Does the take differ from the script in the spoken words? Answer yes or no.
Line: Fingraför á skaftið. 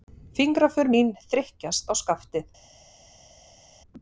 yes